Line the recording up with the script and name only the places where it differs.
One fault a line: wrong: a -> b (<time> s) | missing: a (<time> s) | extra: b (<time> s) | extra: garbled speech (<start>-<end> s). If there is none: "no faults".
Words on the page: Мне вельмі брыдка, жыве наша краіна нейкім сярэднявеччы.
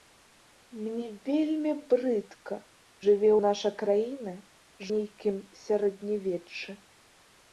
no faults